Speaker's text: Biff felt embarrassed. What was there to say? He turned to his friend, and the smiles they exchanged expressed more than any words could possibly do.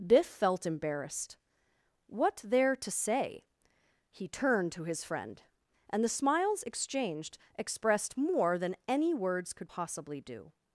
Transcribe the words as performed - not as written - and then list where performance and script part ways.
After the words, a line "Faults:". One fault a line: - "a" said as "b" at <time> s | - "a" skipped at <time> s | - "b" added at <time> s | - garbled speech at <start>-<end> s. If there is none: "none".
Biff felt embarrassed. What there to say? He turned to his friend, and the smiles exchanged expressed more than any words could possibly do.
Faults:
- "was" skipped at 2.4 s
- "they" skipped at 6.6 s